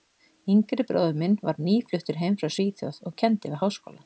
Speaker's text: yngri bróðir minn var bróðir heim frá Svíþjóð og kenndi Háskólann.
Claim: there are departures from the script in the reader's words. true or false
true